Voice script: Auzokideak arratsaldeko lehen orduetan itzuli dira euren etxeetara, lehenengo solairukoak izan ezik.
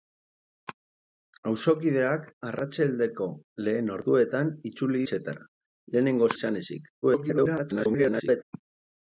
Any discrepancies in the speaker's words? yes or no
yes